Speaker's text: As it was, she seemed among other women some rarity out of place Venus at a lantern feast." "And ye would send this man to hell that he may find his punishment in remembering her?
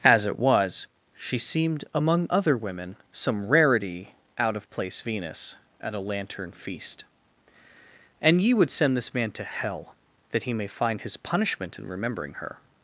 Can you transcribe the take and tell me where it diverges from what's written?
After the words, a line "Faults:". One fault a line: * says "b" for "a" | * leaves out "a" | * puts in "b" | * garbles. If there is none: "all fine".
As it was, she seemed among other women some rarity out of place Venus at a lantern feast." "And ye would send this man to hell that he may find his punishment in remembering her?
Faults:
all fine